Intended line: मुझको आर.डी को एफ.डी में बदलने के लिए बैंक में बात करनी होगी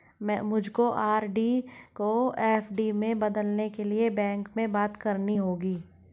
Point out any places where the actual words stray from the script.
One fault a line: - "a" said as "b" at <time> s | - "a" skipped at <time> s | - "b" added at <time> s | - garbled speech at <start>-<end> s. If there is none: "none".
none